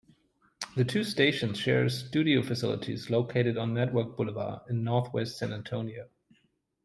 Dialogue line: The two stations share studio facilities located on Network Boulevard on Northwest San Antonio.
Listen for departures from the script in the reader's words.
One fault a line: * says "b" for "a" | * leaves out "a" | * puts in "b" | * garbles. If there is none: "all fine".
* says "in" for "on"